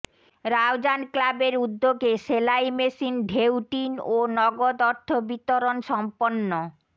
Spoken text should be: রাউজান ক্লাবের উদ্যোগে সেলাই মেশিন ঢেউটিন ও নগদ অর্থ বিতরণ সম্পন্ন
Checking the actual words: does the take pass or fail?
pass